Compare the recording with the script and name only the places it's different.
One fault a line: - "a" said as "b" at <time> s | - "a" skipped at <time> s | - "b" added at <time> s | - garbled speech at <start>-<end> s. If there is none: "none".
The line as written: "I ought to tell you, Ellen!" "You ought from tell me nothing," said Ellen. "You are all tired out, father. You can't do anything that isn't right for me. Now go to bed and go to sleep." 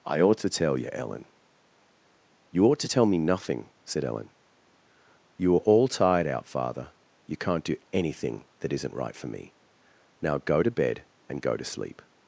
- "from" said as "to" at 2.8 s